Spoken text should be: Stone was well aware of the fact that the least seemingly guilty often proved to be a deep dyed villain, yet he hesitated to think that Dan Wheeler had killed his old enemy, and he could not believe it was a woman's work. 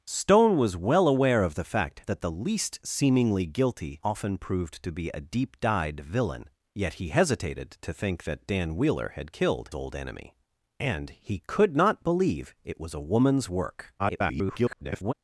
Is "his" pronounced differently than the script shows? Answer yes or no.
yes